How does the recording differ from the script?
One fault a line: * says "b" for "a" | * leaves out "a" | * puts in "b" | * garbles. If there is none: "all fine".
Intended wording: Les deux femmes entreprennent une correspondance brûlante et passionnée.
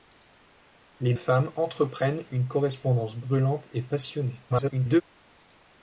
* leaves out "deux"
* garbles